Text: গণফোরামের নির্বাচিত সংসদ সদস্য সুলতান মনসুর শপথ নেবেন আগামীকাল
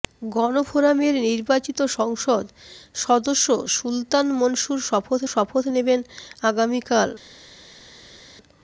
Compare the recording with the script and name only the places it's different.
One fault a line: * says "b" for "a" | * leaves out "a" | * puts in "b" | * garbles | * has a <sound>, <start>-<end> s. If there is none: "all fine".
* puts in "শপথ"